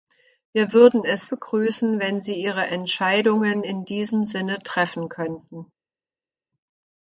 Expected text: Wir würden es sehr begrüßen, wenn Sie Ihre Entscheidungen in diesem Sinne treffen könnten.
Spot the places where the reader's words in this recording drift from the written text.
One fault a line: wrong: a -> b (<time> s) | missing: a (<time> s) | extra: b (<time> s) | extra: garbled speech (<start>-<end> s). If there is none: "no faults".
missing: sehr (1.3 s)